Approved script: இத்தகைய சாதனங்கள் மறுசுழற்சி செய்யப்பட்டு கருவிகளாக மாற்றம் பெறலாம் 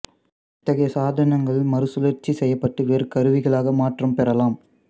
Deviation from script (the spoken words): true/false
true